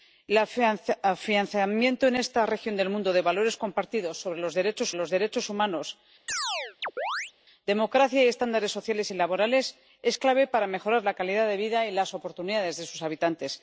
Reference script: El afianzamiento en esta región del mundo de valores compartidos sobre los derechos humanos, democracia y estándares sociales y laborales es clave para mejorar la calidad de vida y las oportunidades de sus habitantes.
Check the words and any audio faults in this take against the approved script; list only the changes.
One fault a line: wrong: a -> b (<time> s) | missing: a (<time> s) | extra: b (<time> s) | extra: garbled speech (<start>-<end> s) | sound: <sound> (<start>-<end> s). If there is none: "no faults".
extra: los derechos (5.0 s)
sound: chirp (6.3-7.3 s)